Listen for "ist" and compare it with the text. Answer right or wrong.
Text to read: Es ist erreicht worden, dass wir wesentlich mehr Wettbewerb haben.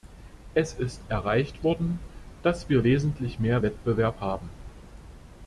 right